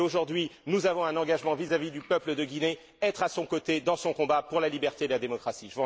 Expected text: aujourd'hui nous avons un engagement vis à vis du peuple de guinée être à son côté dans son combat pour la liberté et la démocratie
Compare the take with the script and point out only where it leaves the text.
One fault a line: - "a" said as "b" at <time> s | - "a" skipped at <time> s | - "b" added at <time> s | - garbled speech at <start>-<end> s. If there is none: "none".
none